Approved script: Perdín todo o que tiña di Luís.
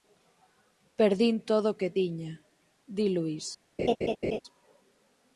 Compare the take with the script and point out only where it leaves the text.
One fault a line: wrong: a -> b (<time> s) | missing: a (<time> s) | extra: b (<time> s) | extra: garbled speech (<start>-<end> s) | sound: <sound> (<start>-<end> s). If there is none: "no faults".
sound: laugh (3.8-4.4 s)